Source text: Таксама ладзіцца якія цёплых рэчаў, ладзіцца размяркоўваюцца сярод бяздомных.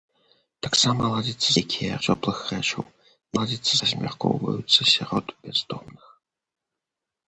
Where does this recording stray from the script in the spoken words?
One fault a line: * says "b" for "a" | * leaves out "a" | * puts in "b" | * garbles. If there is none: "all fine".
all fine